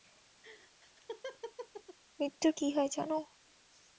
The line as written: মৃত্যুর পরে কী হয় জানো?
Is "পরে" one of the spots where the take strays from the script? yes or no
yes